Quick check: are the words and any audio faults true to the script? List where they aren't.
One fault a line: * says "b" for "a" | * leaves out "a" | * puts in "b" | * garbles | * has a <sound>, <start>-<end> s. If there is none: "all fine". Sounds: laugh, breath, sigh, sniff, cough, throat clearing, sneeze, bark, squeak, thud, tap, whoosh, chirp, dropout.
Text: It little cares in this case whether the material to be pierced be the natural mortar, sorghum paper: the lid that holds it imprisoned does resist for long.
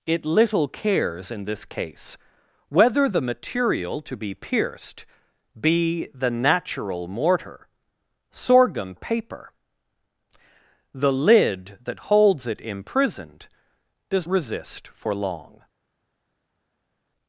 all fine